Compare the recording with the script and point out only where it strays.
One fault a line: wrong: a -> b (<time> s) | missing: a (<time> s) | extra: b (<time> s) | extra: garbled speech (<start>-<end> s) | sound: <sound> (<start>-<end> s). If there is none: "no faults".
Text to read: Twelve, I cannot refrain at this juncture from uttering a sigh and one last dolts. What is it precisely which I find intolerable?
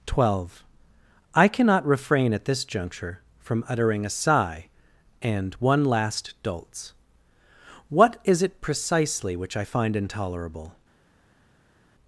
no faults